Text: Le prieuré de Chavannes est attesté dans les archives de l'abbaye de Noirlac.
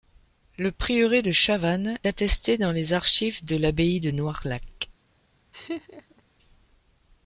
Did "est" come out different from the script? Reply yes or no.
yes